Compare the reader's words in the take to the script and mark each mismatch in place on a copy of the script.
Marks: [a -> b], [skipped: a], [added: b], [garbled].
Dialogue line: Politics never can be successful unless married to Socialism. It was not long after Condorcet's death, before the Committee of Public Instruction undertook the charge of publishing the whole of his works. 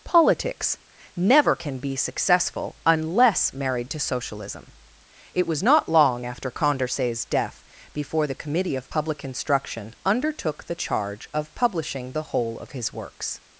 Politics never can be successful unless married to Socialism. It was not long after Condorcet's death, before the Committee of Public Instruction undertook the charge of publishing the whole of his works.